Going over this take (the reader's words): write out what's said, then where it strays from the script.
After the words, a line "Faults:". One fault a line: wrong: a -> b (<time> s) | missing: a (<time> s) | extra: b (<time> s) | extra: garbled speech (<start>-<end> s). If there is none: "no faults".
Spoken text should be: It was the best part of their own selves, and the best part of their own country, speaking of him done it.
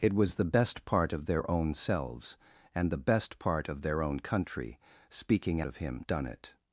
It was the best part of their own selves, and the best part of their own country, speaking of him done it.
Faults:
no faults